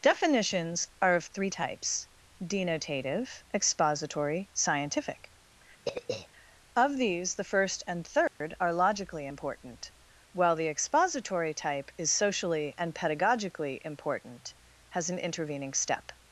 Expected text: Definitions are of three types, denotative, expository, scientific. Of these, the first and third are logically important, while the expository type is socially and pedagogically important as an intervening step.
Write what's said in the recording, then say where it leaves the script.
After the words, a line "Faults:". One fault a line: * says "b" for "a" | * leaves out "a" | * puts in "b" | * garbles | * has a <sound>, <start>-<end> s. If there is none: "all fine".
Definitions are of three types, denotative, expository, scientific. Of these, the first and third are logically important, while the expository type is socially and pedagogically important has an intervening step.
Faults:
* has a throat clearing, 5.9-6.3 s
* has a dropout, 8.3-8.4 s
* says "has" for "as"